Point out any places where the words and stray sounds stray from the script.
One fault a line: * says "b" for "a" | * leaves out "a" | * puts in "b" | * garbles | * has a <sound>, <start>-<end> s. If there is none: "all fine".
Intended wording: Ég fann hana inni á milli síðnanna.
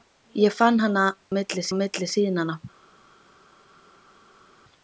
* says "milli" for "inni"